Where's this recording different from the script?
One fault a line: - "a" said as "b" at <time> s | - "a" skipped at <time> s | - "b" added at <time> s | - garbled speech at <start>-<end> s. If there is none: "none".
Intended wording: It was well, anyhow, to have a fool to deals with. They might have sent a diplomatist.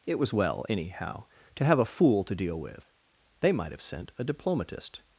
- "deals" said as "deal" at 2.4 s